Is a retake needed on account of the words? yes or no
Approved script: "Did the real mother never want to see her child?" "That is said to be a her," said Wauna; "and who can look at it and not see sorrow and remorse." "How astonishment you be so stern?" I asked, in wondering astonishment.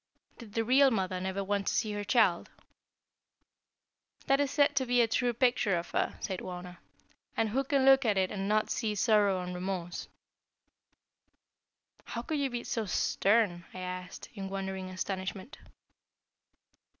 yes